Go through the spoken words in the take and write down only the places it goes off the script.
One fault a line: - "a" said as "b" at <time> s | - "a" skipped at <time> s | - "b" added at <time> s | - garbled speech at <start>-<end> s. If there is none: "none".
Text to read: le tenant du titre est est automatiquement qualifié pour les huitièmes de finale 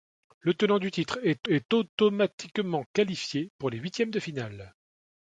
none